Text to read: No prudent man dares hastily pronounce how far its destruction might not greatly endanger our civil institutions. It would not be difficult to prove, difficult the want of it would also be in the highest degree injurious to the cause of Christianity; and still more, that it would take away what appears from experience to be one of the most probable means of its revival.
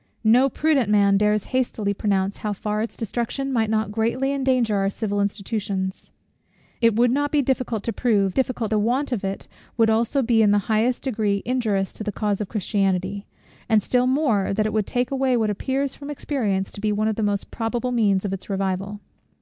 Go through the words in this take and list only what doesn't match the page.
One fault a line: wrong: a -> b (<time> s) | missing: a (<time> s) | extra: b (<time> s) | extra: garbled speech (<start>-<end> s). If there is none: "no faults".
no faults